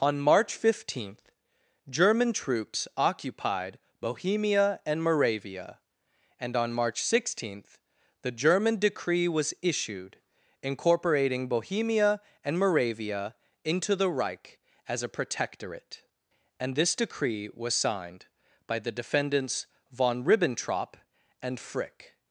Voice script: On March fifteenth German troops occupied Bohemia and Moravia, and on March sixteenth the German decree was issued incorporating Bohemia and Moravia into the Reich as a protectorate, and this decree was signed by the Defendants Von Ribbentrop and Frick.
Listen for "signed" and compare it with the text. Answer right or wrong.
right